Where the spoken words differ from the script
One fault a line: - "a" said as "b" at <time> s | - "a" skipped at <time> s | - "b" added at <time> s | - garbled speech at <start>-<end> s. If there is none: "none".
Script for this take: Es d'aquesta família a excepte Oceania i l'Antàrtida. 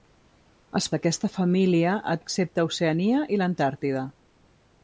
none